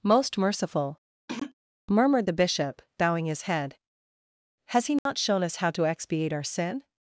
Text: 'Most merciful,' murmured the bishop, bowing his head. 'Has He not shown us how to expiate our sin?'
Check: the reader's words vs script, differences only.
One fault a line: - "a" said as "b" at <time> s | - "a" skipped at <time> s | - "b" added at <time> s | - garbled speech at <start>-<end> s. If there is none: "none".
none